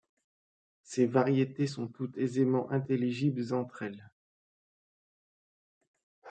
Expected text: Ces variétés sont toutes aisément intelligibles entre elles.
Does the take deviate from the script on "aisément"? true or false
false